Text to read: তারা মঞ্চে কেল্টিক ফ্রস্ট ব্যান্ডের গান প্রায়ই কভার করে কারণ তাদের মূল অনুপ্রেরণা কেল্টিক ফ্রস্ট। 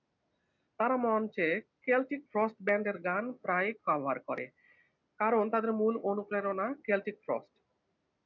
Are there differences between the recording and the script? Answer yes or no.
no